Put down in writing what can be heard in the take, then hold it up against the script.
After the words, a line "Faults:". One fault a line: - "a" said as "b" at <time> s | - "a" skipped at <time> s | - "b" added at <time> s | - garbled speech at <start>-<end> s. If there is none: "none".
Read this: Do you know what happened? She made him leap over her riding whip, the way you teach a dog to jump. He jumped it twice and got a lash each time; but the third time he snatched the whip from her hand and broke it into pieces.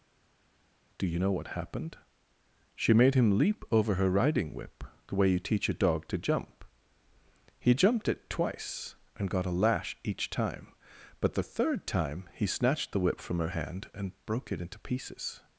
Do you know what happened? She made him leap over her riding whip, the way you teach a dog to jump. He jumped it twice and got a lash each time; but the third time he snatched the whip from her hand and broke it into pieces.
Faults:
none